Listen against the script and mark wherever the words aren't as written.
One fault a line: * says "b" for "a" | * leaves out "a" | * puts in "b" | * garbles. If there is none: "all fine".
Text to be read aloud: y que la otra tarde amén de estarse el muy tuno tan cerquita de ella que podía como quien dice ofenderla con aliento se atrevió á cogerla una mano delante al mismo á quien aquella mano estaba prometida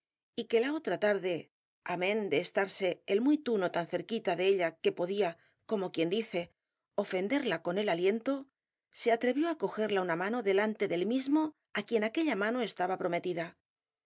* puts in "el"
* says "del" for "al"